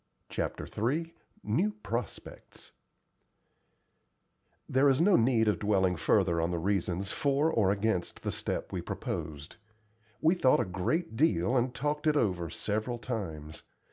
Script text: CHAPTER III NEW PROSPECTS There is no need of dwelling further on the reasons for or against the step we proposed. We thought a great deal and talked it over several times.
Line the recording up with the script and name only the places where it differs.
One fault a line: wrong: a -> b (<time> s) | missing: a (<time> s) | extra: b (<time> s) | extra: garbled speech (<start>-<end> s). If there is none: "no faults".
no faults